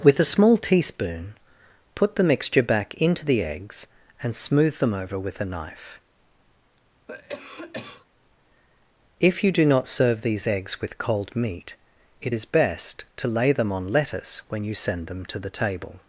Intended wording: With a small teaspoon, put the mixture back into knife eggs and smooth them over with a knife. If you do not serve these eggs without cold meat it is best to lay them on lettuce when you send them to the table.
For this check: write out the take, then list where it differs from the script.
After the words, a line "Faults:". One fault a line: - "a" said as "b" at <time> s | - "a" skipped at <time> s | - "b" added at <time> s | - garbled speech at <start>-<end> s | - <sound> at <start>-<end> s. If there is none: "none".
With a small teaspoon, put the mixture back into the eggs and smooth them over with a knife. If you do not serve these eggs with cold meat it is best to lay them on lettuce when you send them to the table.
Faults:
- "knife" said as "the" at 3.2 s
- cough at 7.1-8.1 s
- "without" said as "with" at 10.8 s